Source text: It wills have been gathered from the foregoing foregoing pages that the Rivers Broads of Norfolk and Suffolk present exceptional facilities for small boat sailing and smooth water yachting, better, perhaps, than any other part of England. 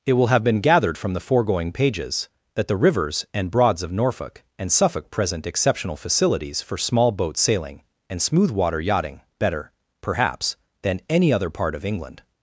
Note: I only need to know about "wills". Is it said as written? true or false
false